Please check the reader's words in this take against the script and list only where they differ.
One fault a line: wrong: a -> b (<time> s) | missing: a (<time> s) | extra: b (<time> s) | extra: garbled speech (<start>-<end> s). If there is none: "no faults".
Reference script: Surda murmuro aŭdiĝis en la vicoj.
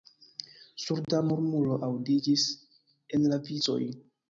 no faults